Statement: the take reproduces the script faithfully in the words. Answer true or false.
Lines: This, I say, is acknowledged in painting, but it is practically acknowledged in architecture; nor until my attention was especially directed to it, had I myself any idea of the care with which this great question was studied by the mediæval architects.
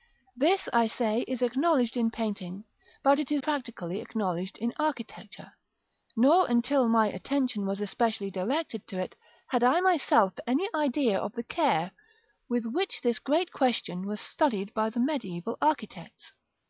true